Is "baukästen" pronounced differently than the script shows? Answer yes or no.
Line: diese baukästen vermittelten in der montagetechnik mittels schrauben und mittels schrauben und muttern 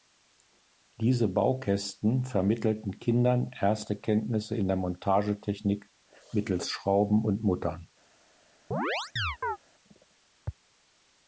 no